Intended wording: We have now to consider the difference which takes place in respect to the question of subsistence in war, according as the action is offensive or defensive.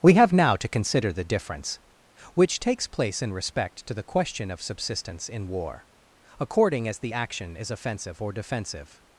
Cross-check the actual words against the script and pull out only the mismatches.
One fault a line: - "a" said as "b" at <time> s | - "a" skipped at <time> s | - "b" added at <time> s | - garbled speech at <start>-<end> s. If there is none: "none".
none